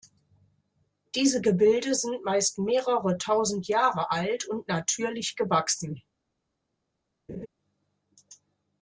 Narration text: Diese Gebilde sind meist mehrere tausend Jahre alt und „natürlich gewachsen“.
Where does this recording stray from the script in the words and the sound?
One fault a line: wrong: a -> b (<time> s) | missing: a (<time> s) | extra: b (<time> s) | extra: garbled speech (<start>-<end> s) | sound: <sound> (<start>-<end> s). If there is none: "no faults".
sound: laugh (7.3-7.5 s)